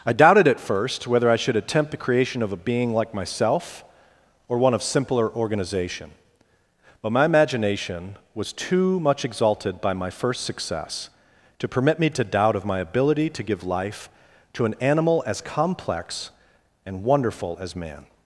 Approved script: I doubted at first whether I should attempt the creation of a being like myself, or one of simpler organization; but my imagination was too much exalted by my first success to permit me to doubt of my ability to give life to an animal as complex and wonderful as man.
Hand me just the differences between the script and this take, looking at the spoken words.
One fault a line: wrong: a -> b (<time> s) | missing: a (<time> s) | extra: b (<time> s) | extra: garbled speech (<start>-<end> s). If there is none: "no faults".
no faults